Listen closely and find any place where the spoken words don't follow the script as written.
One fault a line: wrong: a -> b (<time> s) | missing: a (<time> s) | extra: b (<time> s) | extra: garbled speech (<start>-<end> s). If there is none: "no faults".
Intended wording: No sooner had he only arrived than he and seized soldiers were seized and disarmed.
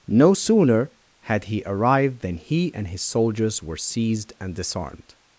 missing: only (1.6 s)
wrong: seized -> his (2.9 s)